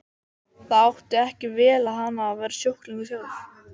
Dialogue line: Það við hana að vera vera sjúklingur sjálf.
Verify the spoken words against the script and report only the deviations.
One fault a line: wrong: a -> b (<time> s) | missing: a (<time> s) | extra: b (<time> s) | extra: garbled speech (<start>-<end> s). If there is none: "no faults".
extra: átti ekki vel (0.8 s)
missing: vera (2.6 s)